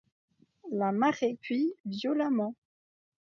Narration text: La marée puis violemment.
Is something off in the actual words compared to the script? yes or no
no